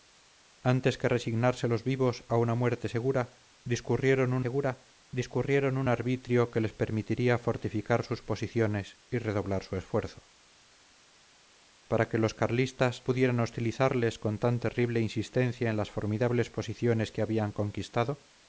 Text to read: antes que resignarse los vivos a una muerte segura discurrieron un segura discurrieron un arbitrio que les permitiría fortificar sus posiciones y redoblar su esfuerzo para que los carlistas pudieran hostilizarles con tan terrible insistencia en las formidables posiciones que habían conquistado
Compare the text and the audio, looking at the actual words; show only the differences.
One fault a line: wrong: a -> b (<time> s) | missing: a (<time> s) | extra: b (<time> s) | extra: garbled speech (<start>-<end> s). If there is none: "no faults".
no faults